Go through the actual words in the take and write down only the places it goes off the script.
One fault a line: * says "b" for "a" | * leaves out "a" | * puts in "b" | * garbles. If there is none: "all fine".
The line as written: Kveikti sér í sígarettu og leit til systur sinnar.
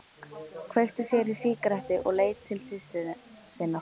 all fine